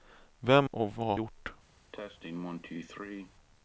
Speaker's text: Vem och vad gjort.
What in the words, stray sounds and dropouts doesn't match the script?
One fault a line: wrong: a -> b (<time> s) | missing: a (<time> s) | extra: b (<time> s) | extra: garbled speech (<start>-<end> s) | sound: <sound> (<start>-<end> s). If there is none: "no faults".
sound: cough (1.9-3.3 s)